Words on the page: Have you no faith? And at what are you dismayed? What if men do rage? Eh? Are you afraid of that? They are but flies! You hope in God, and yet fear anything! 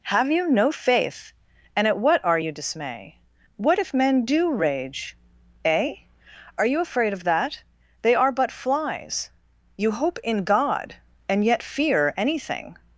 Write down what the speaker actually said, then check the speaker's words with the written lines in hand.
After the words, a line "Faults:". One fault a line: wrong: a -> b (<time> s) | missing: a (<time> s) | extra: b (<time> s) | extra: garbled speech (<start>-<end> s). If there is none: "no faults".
Have you no faith? And at what are you dismay? What if men do rage? Eh? Are you afraid of that? They are but flies! You hope in God, and yet fear anything!
Faults:
wrong: dismayed -> dismay (2.5 s)